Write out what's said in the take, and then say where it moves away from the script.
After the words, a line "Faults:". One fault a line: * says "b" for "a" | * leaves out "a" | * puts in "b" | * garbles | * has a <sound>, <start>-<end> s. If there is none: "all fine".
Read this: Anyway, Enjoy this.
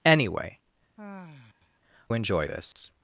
Anyway, Enjoy this.
Faults:
* has a sigh, 1.0-1.8 s
* has a dropout, 2.7-2.8 s